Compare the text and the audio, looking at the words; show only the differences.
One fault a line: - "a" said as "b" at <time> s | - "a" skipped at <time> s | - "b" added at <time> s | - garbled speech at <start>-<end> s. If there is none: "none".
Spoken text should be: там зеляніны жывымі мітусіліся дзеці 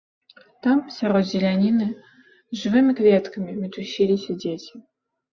- "сярод" added at 0.9 s
- "кветкамі" added at 3.0 s